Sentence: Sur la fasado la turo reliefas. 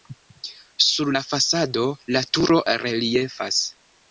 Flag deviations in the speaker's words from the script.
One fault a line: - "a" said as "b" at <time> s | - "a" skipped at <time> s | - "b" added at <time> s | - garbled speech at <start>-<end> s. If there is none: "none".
none